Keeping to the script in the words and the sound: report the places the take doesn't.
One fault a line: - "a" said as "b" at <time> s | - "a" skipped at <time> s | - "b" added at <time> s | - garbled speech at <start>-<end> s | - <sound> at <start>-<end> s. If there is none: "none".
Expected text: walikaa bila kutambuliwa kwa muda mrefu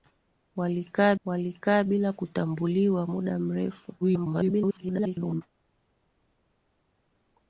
- "walikaa" added at 1.2 s
- "kwa" skipped at 3.1 s
- garbled speech at 4.0-5.4 s